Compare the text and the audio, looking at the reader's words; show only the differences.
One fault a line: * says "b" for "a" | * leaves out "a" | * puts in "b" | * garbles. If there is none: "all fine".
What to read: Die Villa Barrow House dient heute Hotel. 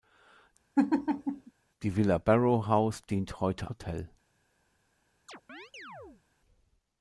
all fine